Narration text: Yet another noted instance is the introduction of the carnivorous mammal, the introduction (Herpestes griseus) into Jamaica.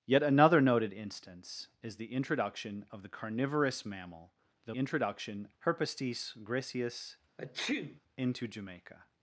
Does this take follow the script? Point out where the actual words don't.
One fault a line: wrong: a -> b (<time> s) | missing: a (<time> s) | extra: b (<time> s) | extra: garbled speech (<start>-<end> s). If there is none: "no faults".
no faults